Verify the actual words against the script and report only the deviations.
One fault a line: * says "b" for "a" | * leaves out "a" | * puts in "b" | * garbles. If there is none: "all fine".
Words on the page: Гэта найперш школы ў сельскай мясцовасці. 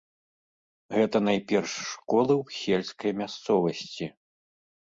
all fine